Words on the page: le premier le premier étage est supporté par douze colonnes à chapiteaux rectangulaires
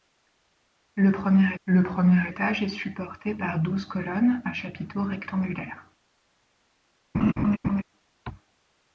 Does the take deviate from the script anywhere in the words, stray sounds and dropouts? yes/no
yes